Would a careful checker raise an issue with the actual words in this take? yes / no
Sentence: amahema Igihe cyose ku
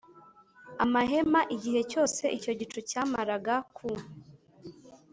yes